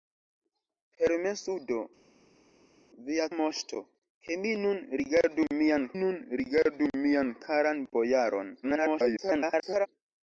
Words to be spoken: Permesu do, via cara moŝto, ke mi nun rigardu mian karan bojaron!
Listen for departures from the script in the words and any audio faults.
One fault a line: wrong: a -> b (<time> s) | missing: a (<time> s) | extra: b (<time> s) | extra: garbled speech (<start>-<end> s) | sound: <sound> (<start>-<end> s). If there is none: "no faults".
missing: cara (3.3 s)
extra: nun rigardu mian (6.0 s)
extra: garbled speech (8.6-9.9 s)